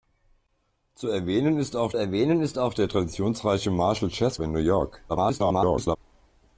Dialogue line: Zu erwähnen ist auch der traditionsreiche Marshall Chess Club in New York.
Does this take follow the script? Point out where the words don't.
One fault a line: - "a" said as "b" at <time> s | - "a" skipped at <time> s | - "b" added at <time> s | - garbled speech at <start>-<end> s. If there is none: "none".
- "erwähnen ist auch" added at 2.0 s
- "Club" skipped at 4.4 s
- garbled speech at 5.1-6.0 s